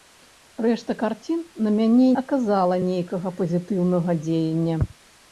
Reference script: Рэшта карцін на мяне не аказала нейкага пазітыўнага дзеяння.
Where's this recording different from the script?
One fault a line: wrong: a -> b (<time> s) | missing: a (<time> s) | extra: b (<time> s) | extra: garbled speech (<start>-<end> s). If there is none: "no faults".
missing: не (2.1 s)